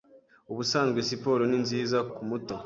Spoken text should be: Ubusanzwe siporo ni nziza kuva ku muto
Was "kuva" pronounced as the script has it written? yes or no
no